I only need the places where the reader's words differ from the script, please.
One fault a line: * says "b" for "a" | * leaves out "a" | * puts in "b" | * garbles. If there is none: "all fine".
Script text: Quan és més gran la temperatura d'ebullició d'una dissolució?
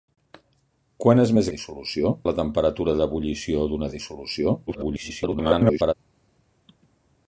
* says "dissolució" for "gran"
* garbles